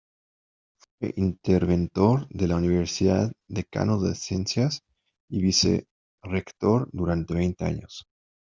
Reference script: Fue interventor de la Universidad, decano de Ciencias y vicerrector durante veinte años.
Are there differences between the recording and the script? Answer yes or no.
no